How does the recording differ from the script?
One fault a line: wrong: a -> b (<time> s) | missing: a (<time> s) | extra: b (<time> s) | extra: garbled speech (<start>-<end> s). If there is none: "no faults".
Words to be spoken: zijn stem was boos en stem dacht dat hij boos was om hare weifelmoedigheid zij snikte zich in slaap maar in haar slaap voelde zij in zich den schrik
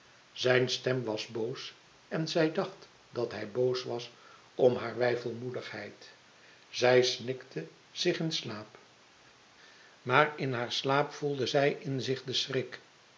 wrong: stem -> zij (2.3 s)